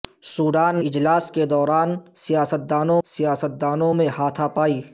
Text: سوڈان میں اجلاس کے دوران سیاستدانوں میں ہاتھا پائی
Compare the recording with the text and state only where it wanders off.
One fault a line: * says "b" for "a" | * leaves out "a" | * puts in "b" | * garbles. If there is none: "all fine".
* leaves out "میں"
* puts in "سیاستدانوں"